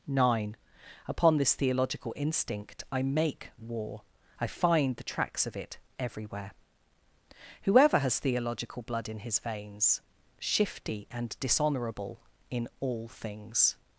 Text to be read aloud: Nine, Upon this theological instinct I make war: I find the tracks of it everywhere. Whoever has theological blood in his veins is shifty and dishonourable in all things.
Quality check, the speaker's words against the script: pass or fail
fail